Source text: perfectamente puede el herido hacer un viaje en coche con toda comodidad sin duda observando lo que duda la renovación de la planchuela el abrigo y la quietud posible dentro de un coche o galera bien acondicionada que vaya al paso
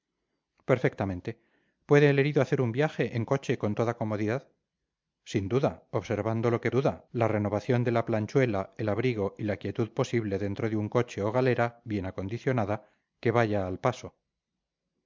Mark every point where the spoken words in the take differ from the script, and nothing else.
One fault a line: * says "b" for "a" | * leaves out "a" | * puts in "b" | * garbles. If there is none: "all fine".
all fine